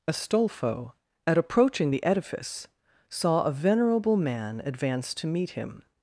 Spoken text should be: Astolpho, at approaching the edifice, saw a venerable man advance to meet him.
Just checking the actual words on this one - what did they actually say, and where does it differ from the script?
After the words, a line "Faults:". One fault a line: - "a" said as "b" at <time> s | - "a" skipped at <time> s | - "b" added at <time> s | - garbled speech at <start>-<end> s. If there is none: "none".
Astolpho, at approaching the edifice, saw a venerable man advance to meet him.
Faults:
none